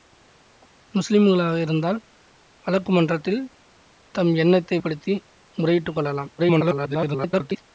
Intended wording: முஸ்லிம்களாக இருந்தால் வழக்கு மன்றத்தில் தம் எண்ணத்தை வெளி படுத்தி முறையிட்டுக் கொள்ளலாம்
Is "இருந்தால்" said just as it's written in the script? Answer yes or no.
yes